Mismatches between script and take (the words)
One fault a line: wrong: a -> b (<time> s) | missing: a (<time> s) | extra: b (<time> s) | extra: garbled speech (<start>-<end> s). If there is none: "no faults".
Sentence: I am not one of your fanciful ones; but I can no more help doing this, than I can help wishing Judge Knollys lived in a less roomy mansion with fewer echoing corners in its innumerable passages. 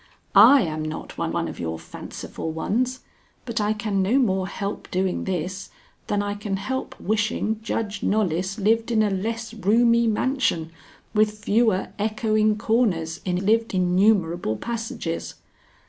extra: one (1.3 s)
wrong: its -> lived (13.4 s)